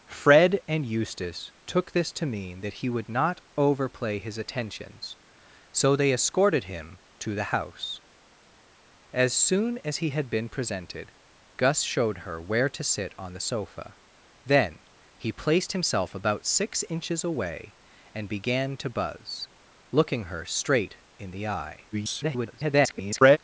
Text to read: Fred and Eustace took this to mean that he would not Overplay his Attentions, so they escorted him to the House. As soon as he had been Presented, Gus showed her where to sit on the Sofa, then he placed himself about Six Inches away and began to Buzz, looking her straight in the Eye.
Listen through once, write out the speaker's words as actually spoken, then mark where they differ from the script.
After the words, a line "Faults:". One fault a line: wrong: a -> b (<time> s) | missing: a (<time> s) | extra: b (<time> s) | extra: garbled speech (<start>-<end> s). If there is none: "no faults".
Fred and Eustace took this to mean that he would not Overplay his Attentions, so they escorted him to the House. As soon as he had been Presented, Gus showed her where to sit on the Sofa, then he placed himself about Six Inches away and began to Buzz, looking her straight in the Eye. [garbled]
Faults:
extra: garbled speech (21.9-23.4 s)